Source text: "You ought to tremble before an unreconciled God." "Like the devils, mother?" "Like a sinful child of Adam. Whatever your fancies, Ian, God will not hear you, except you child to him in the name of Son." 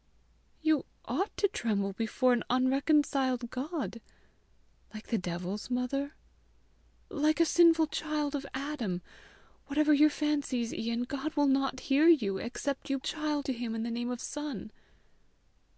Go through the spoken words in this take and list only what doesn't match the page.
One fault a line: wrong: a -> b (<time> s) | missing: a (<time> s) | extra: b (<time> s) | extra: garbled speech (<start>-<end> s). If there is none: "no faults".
no faults